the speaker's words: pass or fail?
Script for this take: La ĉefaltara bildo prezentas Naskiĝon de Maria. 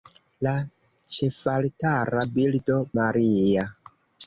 fail